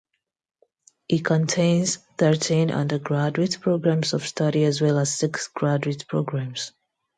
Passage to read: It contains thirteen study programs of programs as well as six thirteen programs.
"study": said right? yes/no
no